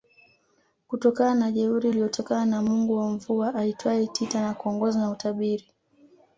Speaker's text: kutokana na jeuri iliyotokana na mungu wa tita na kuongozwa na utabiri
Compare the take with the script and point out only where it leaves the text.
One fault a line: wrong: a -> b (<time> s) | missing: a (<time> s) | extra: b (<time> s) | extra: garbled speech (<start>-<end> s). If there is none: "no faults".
extra: mvua aitwaye (3.1 s)